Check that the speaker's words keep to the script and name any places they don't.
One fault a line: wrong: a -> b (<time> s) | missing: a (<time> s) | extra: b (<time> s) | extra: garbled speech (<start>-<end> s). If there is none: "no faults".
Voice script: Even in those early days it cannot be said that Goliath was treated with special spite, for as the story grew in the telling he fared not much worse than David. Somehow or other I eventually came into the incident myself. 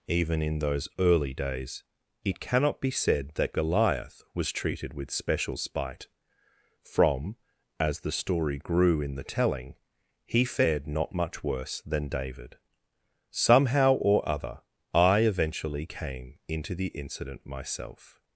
wrong: for -> from (6.8 s)